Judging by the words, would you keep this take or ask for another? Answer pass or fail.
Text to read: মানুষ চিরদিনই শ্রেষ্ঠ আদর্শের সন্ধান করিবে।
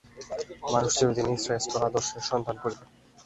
pass